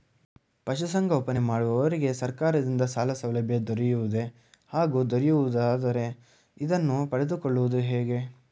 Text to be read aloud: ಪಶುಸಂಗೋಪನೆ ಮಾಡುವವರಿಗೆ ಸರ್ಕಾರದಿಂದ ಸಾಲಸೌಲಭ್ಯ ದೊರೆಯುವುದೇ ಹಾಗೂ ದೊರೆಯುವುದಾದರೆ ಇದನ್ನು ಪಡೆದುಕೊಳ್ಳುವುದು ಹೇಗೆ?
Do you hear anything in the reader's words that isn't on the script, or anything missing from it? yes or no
no